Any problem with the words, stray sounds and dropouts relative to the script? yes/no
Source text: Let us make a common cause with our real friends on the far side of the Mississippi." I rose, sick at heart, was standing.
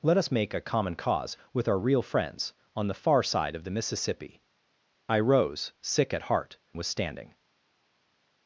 no